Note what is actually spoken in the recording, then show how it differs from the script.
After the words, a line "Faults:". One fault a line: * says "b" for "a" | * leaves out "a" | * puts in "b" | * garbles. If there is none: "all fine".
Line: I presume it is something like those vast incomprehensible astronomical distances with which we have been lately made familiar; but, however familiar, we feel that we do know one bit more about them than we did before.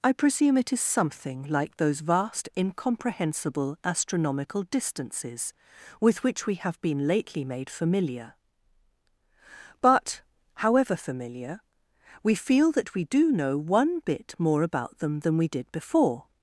I presume it is something like those vast incomprehensible astronomical distances with which we have been lately made familiar; but, however familiar, we feel that we do know one bit more about them than we did before.
Faults:
all fine